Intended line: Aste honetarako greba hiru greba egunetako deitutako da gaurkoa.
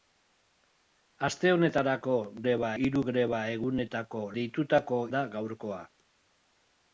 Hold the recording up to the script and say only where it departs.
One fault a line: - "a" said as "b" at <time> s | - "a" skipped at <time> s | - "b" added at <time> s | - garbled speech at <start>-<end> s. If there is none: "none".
none